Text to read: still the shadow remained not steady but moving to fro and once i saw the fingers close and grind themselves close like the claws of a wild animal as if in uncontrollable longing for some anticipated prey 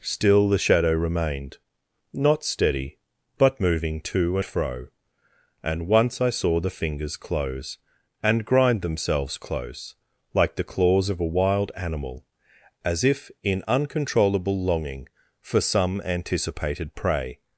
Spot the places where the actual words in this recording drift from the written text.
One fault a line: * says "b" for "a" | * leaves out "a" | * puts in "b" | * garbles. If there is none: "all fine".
all fine